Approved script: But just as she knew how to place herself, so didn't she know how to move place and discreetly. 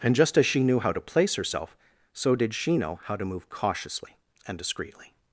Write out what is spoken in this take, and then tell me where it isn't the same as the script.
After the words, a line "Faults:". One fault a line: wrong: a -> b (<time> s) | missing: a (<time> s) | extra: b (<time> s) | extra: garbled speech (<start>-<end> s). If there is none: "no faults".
And just as she knew how to place herself, so did she know how to move cautiously and discreetly.
Faults:
wrong: But -> And (0.0 s)
wrong: didn't -> did (2.4 s)
wrong: place -> cautiously (3.5 s)